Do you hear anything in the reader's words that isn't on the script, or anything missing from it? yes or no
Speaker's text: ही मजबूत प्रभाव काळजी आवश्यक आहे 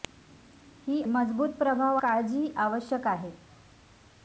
no